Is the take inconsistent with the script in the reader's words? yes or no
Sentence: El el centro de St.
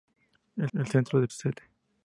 no